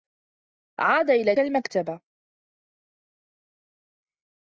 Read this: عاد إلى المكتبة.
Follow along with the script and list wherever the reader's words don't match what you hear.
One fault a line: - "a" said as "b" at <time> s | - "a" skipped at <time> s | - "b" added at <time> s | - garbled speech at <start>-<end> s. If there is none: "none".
none